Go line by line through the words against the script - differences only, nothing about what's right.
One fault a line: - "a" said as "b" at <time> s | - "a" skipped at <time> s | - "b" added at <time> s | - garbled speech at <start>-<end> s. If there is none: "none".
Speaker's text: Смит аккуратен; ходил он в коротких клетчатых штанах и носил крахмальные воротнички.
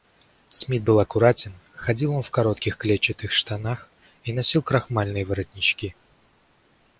- "был" added at 0.8 s